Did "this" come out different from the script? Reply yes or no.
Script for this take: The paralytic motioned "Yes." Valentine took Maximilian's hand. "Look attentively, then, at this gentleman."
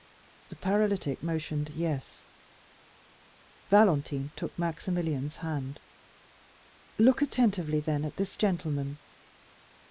no